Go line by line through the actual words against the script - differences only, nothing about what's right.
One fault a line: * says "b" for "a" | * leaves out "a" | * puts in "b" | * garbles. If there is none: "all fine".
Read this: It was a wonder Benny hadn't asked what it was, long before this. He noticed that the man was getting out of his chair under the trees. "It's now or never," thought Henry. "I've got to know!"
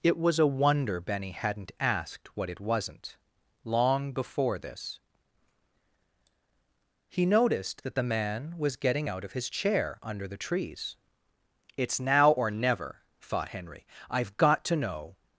* says "wasn't" for "was"